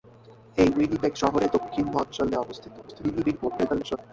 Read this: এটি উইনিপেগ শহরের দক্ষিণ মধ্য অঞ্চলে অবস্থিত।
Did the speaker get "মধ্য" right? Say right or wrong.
wrong